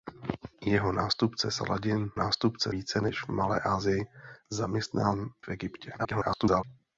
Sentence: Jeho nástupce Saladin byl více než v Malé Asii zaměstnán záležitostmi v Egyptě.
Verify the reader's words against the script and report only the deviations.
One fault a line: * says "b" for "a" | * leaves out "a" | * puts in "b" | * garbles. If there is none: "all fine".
* says "nástupce" for "byl"
* leaves out "záležitostmi"
* garbles